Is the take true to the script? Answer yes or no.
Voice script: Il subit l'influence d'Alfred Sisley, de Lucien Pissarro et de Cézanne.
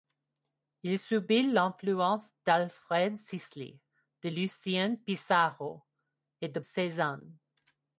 yes